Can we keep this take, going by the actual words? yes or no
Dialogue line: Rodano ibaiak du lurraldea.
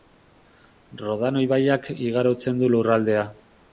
no